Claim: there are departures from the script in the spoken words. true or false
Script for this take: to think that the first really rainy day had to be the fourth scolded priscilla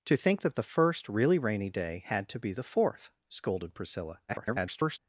true